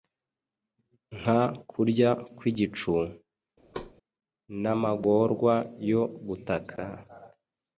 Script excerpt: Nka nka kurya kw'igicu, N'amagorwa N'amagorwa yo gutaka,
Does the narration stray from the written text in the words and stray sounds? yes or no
yes